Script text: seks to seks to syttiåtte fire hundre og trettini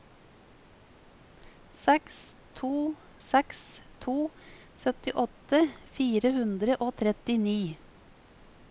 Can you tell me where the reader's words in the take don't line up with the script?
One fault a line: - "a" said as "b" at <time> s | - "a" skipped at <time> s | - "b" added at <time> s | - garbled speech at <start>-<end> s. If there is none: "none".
none